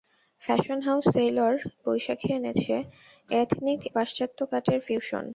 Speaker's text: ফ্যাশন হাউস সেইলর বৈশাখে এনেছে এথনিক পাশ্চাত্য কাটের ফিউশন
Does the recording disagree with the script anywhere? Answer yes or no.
no